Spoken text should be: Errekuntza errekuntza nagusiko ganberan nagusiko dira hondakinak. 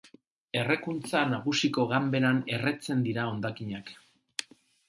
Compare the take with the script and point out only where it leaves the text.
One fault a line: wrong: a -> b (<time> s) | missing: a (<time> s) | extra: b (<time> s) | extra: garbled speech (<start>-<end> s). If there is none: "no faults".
missing: errekuntza (1.2 s)
wrong: nagusiko -> erretzen (2.6 s)